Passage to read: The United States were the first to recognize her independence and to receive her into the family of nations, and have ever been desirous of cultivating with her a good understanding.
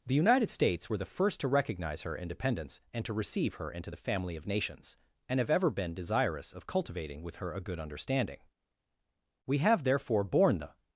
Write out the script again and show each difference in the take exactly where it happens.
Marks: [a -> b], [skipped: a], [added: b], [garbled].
The United States were the first to recognize her independence and to receive her into the family of nations, and have ever been desirous of cultivating with her a good understanding. [added: We have therefore borne the]